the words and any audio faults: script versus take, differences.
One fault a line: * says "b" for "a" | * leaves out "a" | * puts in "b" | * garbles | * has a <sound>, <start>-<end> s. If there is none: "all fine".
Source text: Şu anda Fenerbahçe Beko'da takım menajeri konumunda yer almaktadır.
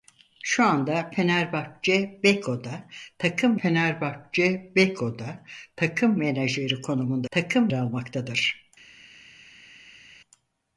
* puts in "Fenerbahçe Beko'da takım"
* says "takım" for "yer"